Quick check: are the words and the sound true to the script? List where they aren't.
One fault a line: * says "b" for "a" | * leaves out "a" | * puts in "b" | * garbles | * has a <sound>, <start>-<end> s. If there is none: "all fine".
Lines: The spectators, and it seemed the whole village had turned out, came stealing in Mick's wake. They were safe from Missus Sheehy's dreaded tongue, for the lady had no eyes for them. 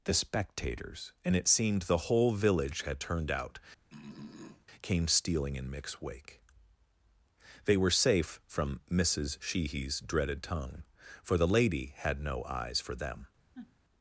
* has a throat clearing, 3.9-4.7 s
* has a sniff, 13.5-13.8 s